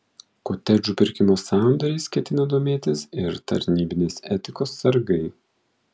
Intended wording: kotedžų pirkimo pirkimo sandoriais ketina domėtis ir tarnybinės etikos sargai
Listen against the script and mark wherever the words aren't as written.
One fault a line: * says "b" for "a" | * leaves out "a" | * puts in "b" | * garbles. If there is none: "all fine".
* leaves out "pirkimo"